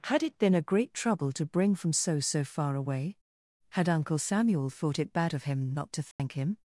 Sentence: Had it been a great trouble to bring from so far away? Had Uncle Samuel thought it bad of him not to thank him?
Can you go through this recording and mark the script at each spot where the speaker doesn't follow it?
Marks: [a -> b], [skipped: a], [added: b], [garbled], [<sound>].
Had it been a great trouble to bring from so [added: so] far away? Had Uncle Samuel thought it bad of him not to thank [dropout] him?